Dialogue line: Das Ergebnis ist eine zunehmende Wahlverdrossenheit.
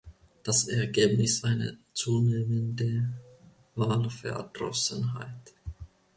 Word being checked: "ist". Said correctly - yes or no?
no